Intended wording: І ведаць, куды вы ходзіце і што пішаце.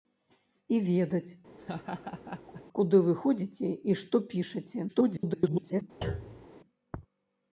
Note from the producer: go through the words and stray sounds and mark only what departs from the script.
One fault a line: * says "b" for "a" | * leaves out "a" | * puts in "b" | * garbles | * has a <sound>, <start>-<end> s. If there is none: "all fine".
* has a laugh, 1.6-2.6 s
* garbles
* has a thud, 6.0-6.5 s